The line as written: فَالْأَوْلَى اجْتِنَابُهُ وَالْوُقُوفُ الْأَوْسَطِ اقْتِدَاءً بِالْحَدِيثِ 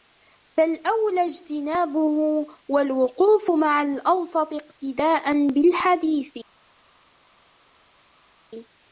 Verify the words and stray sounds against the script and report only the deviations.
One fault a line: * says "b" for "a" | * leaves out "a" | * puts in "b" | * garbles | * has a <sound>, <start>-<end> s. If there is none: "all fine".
* puts in "مَعَ"